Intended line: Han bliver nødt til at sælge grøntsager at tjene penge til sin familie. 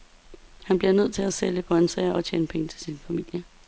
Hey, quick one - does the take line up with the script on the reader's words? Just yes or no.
yes